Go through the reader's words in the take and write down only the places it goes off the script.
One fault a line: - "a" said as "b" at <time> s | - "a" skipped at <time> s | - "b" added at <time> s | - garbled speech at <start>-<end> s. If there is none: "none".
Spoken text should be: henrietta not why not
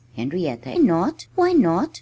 none